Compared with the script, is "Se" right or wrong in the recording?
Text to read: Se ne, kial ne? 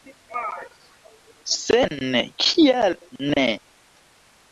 right